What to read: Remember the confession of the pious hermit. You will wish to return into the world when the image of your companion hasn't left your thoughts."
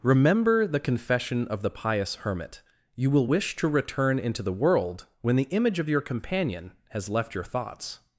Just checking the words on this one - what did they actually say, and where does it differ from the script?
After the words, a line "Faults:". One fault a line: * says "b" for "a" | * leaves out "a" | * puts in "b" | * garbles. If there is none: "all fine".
Remember the confession of the pious hermit. You will wish to return into the world when the image of your companion has left your thoughts."
Faults:
* says "has" for "hasn't"